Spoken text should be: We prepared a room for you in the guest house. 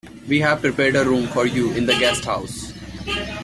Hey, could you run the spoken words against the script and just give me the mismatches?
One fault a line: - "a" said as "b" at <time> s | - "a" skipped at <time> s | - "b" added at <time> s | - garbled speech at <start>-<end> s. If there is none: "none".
- "have" added at 0.4 s